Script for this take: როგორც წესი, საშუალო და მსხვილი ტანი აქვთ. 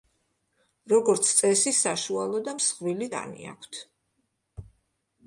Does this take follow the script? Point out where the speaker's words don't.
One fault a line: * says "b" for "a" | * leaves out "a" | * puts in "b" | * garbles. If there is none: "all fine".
all fine